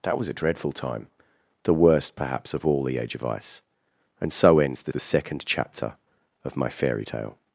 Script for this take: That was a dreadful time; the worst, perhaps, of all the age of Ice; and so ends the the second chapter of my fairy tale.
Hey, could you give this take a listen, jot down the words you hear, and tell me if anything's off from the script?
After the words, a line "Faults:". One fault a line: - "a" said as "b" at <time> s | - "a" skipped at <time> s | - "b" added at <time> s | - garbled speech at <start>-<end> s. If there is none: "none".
That was a dreadful time; the worst, perhaps, of all the age of Ice; and so ends the the second chapter of my fairy tale.
Faults:
none